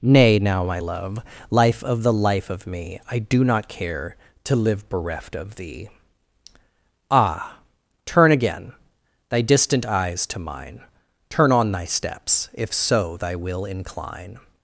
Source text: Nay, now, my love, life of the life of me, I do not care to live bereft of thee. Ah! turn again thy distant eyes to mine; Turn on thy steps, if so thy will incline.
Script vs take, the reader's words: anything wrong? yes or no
no